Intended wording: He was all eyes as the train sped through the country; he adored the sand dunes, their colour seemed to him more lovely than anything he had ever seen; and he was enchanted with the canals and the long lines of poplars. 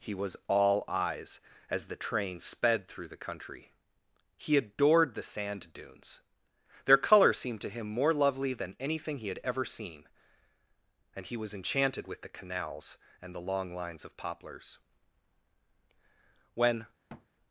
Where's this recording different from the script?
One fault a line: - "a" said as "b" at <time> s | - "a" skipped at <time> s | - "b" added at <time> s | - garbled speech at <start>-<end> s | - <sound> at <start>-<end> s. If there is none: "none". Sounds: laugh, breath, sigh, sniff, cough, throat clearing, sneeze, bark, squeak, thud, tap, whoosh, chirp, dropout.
- "When" added at 16.5 s
- thud at 17.1-17.3 s